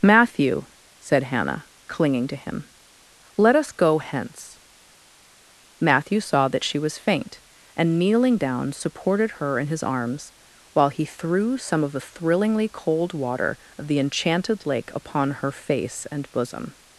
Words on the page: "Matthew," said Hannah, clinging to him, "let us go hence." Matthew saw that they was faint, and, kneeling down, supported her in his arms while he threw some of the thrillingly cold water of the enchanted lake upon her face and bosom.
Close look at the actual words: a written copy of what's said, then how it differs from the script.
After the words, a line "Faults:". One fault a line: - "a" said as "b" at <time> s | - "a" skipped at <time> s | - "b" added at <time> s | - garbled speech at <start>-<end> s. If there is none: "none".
"Matthew," said Hannah, clinging to him, "let us go hence." Matthew saw that she was faint, and, kneeling down, supported her in his arms while he threw some of the thrillingly cold water of the enchanted lake upon her face and bosom.
Faults:
- "they" said as "she" at 6.6 s